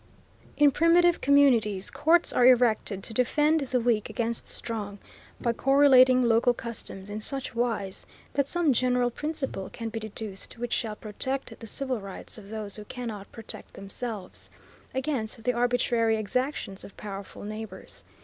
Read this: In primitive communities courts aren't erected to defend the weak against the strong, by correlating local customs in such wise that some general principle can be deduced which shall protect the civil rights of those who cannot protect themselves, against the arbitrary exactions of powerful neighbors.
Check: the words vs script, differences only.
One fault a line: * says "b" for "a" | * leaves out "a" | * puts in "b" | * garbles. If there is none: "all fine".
* says "are" for "aren't"